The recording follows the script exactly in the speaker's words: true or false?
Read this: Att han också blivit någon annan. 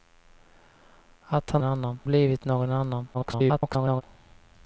false